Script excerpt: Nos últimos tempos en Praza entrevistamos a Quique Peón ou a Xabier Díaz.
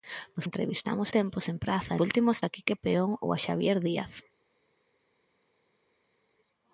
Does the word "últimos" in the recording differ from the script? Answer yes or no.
yes